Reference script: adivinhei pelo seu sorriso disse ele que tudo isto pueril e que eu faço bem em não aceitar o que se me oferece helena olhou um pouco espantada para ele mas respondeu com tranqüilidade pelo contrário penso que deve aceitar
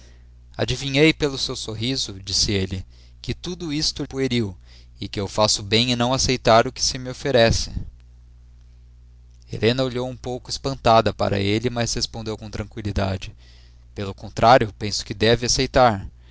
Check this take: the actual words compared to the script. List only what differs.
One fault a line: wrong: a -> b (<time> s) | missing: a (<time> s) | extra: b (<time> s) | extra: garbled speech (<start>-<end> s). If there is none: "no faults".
no faults